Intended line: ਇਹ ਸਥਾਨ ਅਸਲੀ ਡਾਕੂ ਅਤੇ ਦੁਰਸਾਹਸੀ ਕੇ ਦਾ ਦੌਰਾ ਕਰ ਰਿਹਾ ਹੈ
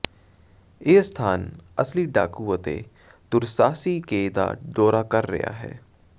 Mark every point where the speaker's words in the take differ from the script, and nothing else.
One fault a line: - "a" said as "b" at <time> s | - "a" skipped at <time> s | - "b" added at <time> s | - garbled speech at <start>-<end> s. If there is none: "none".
none